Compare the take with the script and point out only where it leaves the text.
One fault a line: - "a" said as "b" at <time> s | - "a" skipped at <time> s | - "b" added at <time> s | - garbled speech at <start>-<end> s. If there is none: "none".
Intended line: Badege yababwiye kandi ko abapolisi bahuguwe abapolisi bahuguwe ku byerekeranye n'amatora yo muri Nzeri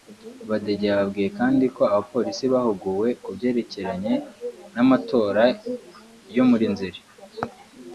- "abapolisi bahuguwe" skipped at 3.1 s